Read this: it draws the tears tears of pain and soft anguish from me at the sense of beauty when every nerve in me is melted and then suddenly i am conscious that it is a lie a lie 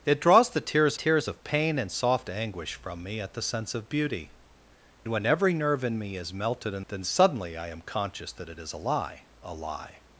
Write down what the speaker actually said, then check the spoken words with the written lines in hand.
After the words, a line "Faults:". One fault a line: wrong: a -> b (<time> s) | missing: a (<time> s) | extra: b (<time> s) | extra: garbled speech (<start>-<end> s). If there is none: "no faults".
it draws the tears tears of pain and soft anguish from me at the sense of beauty when every nerve in me is melted and then suddenly i am conscious that it is a lie a lie
Faults:
no faults